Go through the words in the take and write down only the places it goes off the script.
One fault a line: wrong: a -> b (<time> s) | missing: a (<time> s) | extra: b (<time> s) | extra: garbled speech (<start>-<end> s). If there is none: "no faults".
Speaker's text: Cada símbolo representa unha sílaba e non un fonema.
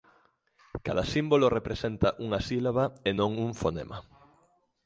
no faults